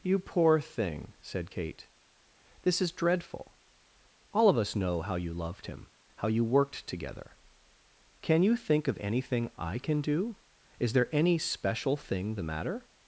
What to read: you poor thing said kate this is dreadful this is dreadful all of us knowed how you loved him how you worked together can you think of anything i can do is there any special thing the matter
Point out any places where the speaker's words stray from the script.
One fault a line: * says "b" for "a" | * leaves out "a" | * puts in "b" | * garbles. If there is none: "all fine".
* leaves out "this is dreadful"
* says "know" for "knowed"